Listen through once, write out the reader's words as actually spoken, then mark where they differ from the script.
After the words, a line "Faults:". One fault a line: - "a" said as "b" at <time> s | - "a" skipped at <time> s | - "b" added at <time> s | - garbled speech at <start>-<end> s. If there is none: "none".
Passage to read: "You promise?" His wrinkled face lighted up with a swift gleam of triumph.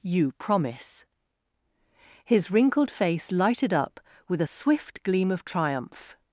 "You promise?" His wrinkled face lighted up with a swift gleam of triumph.
Faults:
none